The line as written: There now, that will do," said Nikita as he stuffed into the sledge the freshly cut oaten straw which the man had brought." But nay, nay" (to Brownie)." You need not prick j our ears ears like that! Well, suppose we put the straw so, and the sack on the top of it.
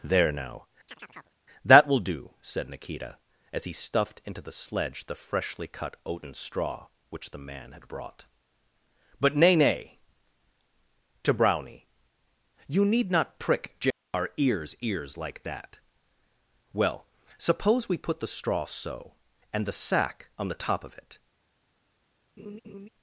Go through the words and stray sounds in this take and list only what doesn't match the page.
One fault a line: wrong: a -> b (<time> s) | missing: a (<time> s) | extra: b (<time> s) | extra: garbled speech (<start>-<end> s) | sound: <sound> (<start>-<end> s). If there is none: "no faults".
sound: chirp (0.9-1.4 s)
sound: laugh (22.4-22.9 s)